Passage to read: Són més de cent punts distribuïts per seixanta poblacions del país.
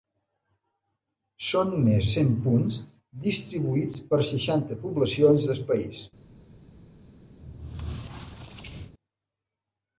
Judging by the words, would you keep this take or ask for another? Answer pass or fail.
fail